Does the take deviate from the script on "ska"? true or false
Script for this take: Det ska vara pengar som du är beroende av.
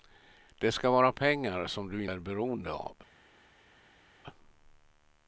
false